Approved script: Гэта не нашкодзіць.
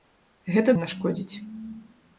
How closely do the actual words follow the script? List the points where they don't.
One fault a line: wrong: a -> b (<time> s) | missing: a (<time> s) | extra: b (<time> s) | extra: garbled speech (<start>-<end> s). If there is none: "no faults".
no faults